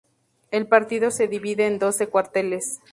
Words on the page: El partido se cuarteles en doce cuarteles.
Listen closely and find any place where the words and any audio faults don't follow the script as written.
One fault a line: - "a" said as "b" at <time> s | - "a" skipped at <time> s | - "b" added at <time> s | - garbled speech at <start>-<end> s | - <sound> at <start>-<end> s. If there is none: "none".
- "cuarteles" said as "divide" at 1.3 s